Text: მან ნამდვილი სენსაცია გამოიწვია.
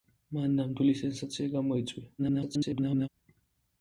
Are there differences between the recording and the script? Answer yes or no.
yes